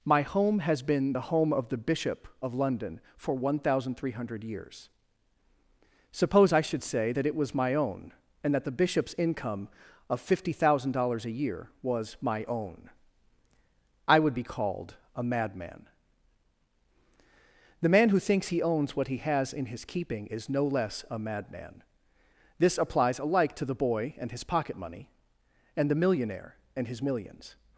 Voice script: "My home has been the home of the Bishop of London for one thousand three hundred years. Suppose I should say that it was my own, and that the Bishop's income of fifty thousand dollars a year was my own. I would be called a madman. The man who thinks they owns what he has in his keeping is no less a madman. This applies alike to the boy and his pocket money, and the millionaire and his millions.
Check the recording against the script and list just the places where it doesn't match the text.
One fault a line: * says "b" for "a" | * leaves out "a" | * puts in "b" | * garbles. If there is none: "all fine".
* says "he" for "they"